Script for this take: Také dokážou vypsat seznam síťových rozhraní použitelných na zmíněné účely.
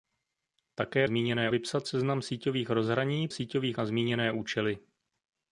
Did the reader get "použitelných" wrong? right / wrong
wrong